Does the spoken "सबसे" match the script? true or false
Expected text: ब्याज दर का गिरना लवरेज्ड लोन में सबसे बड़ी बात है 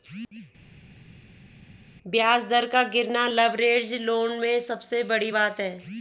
true